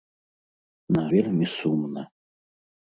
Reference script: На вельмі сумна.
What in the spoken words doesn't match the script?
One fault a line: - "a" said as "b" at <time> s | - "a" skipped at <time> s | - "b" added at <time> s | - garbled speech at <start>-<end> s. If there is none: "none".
none